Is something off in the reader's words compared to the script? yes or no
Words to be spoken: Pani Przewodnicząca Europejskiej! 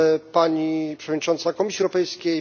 yes